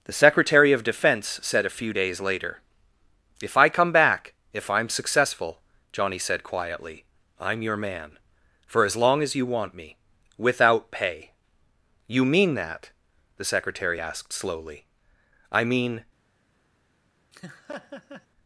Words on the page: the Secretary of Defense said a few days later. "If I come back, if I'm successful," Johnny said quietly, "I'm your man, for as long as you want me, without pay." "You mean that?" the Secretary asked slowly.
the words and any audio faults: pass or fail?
fail